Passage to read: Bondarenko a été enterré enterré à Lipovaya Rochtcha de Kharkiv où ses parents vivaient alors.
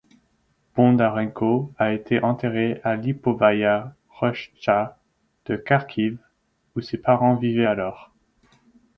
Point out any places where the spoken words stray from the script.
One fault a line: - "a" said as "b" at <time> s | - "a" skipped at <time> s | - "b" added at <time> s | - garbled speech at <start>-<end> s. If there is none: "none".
- "enterré" skipped at 2.8 s